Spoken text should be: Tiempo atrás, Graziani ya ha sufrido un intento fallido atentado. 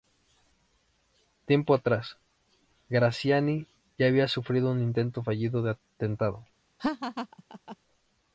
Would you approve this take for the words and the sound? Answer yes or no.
no